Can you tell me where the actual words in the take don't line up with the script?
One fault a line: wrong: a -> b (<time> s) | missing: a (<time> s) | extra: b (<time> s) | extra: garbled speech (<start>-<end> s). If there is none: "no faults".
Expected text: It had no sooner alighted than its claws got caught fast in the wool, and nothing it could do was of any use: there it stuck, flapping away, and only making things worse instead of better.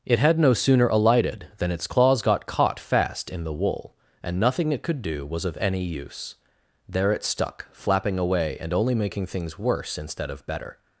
no faults